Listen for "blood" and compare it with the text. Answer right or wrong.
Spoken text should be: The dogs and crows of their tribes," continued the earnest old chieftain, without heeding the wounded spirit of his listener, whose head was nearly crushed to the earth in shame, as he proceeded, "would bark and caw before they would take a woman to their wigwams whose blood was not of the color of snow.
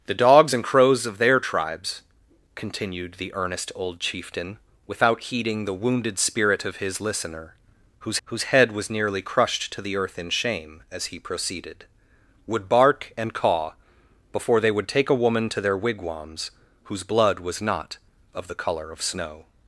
right